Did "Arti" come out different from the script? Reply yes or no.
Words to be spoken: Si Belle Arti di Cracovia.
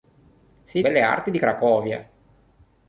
no